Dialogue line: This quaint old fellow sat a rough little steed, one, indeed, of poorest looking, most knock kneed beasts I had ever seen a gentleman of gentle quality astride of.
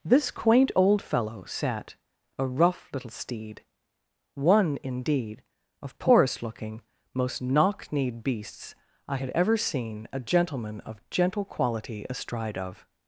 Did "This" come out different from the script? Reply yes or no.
no